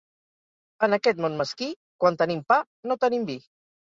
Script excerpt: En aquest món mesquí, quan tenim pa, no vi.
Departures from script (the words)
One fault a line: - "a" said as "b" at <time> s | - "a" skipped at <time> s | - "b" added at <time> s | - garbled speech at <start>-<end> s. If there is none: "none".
- "tenim" added at 3.0 s